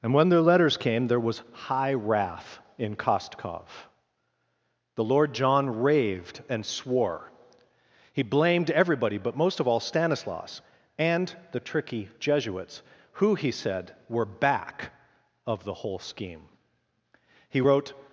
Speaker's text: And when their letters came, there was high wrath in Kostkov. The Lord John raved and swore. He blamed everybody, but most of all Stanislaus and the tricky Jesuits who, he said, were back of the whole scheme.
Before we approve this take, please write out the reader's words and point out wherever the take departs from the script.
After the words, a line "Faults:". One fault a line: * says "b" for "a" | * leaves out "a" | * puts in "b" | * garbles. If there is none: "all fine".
And when their letters came, there was high wrath in Kostkov. The Lord John raved and swore. He blamed everybody, but most of all Stanislaus and the tricky Jesuits who, he said, were back of the whole scheme. He wrote
Faults:
* puts in "He wrote"